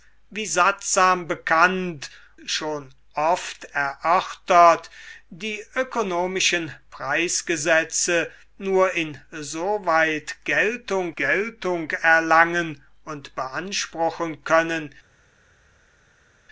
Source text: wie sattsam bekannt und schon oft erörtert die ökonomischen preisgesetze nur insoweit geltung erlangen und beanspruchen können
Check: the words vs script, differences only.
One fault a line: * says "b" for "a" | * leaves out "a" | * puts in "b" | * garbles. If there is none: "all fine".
* leaves out "und"
* puts in "geltung"